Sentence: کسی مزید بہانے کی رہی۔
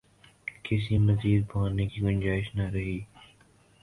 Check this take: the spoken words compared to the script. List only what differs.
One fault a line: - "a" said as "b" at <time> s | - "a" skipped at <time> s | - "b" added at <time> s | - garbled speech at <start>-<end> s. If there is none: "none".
- "گنجائش نہ" added at 2.0 s